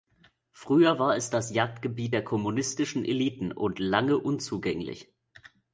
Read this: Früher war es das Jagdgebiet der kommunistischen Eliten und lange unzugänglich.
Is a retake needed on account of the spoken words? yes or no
no